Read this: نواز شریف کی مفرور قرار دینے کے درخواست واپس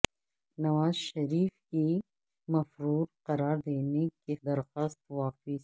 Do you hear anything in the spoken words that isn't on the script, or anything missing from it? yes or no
no